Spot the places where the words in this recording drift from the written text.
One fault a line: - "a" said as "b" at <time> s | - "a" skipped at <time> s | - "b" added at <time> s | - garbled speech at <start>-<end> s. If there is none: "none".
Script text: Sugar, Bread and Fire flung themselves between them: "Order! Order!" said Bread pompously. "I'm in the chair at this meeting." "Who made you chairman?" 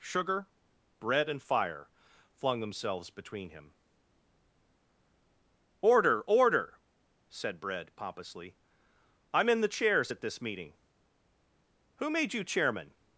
- "them" said as "him" at 3.5 s
- "chair" said as "chairs" at 9.7 s